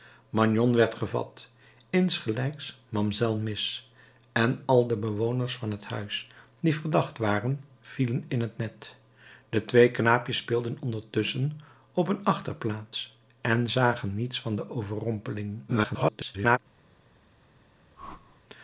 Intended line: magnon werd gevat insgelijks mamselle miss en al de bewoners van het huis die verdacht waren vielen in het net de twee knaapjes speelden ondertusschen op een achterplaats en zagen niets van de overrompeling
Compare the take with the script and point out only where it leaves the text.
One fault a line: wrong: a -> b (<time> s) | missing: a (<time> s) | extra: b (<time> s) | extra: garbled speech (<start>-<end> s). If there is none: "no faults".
extra: garbled speech (15.7-16.6 s)